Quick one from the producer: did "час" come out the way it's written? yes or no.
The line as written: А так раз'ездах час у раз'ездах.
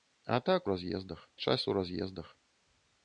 yes